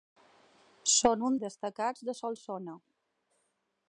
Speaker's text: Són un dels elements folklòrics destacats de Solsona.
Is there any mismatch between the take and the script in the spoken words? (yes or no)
yes